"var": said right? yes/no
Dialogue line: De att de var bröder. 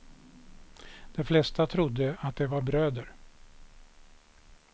yes